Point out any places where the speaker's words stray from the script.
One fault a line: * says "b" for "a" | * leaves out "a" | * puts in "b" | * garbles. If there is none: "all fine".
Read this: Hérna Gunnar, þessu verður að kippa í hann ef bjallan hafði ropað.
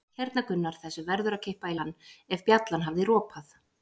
all fine